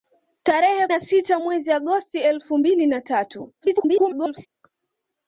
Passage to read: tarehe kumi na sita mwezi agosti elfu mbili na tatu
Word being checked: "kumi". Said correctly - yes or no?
no